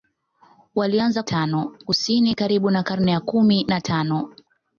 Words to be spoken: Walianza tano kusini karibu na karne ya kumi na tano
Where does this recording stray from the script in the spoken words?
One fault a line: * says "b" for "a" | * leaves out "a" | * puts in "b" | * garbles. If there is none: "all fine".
all fine